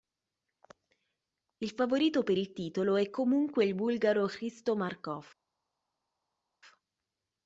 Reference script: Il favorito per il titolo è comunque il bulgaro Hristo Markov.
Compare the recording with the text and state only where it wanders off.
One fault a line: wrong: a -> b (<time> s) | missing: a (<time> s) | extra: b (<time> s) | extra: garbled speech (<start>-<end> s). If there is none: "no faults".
no faults